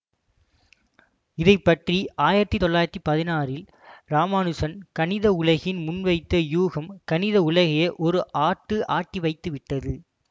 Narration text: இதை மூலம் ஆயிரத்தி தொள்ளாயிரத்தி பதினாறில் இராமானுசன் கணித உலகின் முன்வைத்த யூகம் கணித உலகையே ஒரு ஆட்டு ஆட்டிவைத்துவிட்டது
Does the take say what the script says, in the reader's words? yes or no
no